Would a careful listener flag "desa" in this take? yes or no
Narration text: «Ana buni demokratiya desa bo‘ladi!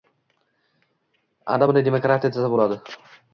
no